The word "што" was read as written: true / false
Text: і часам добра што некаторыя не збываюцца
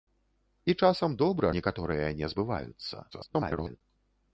false